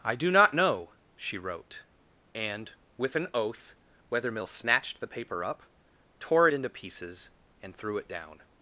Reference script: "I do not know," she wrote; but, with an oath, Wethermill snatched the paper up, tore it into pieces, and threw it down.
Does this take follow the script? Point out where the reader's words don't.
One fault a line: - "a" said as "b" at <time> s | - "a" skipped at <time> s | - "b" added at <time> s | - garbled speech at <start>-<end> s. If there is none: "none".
- "but" said as "and" at 2.3 s